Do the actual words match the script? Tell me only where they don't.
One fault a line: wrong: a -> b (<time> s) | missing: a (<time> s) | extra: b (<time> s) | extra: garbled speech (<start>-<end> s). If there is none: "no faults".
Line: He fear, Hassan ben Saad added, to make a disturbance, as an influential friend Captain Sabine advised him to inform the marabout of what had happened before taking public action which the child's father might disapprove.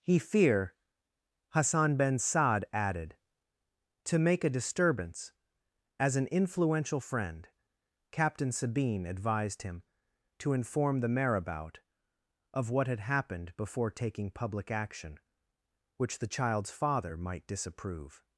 no faults